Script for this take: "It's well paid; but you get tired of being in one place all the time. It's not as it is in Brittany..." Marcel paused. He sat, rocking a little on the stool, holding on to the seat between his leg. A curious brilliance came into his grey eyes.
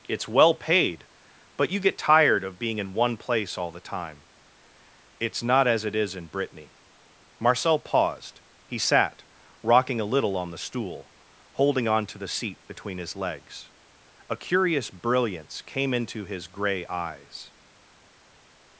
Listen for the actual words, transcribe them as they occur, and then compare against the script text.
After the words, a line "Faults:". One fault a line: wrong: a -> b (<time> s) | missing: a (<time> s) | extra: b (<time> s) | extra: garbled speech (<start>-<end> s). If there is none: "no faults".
"It's well paid; but you get tired of being in one place all the time. It's not as it is in Brittany..." Marcel paused. He sat, rocking a little on the stool, holding on to the seat between his legs. A curious brilliance came into his grey eyes.
Faults:
wrong: leg -> legs (13.2 s)